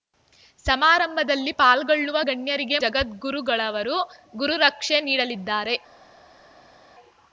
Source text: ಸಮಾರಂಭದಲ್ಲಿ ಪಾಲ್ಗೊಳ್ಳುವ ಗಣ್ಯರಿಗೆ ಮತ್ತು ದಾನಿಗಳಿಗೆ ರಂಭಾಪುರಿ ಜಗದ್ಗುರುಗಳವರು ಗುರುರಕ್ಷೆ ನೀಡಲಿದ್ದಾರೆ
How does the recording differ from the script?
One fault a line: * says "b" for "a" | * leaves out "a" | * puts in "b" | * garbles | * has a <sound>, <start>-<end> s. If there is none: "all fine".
* leaves out "ಮತ್ತು ದಾನಿಗಳಿಗೆ ರಂಭಾಪುರಿ"